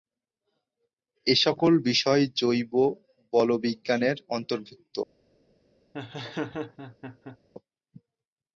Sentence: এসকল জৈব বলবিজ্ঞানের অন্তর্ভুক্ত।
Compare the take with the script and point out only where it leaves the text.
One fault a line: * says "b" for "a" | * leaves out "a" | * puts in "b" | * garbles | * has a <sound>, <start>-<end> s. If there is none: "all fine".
* puts in "বিষয়"
* has a laugh, 5.9-7.4 s